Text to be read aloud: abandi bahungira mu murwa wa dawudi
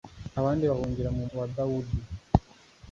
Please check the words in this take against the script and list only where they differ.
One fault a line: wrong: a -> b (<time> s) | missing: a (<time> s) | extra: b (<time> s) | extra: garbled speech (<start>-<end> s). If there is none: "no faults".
missing: murwa (1.2 s)